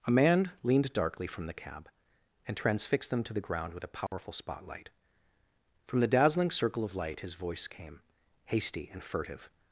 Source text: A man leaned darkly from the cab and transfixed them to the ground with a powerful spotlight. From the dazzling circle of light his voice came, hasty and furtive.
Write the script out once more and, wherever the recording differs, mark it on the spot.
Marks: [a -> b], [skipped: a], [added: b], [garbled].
A man leaned darkly from the cab and transfixed them to the ground with a powerful spotlight. From the dazzling circle of light his voice came, hasty and furtive.